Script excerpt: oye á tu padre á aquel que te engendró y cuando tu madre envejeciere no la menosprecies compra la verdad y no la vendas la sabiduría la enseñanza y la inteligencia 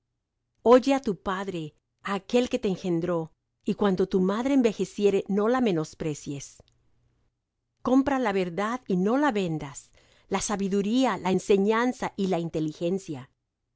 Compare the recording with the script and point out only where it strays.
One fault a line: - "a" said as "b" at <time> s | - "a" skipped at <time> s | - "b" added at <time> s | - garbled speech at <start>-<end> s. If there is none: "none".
none